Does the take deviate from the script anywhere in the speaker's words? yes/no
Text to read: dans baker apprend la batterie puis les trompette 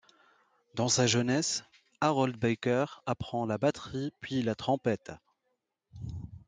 yes